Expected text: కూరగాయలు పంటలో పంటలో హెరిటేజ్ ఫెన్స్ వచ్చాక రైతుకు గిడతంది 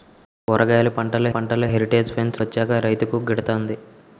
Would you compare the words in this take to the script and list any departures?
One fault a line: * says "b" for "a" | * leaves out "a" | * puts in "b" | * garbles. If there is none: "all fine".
all fine